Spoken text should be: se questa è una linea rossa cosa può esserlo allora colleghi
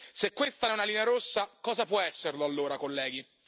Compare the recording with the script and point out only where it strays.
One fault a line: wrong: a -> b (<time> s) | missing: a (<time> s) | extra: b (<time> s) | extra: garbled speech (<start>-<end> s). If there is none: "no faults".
no faults